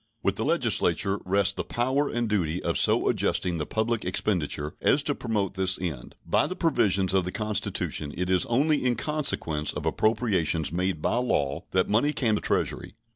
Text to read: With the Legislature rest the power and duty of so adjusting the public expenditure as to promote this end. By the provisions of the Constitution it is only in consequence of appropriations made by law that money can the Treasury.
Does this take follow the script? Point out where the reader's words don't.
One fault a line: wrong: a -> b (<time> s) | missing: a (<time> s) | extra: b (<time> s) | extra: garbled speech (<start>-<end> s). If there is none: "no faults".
no faults